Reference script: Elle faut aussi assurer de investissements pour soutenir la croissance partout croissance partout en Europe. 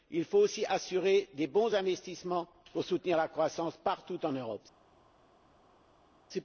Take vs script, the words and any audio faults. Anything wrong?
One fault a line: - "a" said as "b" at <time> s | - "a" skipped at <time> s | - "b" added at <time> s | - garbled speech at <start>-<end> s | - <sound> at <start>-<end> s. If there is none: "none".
- "Elle" said as "Il" at 0.1 s
- "bons" added at 1.4 s
- "croissance partout" skipped at 4.2 s